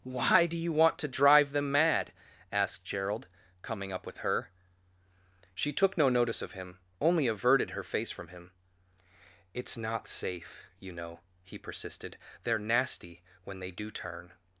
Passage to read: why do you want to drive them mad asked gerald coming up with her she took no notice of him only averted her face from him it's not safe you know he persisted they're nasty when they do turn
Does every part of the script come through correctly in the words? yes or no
yes